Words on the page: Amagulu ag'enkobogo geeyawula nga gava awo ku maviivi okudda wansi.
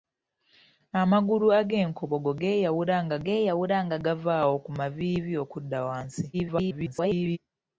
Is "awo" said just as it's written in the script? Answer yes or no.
yes